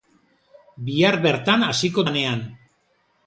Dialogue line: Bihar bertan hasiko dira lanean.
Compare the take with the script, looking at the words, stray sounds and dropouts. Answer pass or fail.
fail